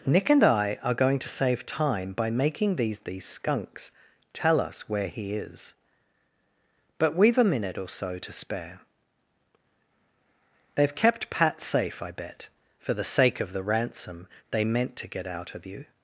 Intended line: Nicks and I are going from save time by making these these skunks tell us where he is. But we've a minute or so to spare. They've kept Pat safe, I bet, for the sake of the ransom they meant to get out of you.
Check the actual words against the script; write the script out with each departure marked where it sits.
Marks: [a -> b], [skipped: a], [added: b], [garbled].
[Nicks -> Nick] and I are going [from -> to] save time by making these these skunks tell us where he is. But we've a minute or so to spare. They've kept Pat safe, I bet, for the sake of the ransom they meant to get out of you.